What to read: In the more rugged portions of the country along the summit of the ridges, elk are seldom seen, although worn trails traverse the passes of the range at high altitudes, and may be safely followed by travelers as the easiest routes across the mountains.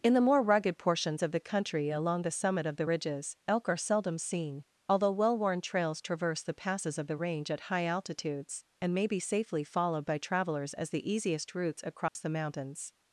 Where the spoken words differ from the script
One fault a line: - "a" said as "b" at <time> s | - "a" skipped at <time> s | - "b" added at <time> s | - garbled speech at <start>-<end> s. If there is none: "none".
- "well" added at 5.1 s